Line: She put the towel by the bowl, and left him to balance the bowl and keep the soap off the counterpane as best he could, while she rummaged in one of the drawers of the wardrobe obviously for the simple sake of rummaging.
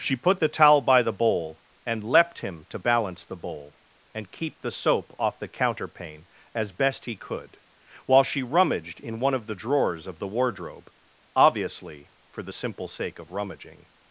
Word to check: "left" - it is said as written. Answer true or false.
false